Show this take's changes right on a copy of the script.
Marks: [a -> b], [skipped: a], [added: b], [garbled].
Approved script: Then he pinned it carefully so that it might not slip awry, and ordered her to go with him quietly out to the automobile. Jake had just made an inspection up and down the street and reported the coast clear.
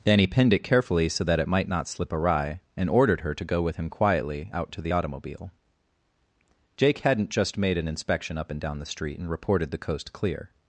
Then he pinned it carefully so that it might not slip awry, and ordered her to go with him quietly out to the automobile. Jake [had -> hadn't] just made an inspection up and down the street and reported the coast clear.